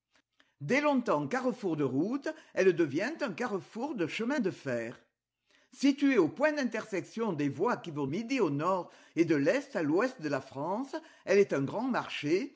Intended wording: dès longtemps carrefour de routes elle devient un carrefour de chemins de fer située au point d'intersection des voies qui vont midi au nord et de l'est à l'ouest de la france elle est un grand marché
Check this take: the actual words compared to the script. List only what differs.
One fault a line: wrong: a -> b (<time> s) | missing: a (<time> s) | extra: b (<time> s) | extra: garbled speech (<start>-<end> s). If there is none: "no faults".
no faults